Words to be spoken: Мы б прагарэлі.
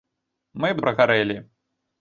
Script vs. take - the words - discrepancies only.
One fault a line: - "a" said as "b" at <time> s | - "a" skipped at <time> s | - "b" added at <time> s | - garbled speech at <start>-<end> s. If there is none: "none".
none